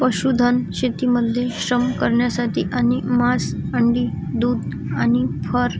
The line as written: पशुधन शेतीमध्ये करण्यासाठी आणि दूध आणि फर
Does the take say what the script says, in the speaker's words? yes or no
no